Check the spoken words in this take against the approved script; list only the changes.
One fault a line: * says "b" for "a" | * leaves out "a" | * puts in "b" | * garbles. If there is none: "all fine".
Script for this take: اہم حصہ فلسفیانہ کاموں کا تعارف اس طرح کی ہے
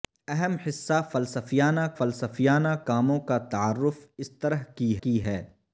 * puts in "فلسفیانہ"
* puts in "کی"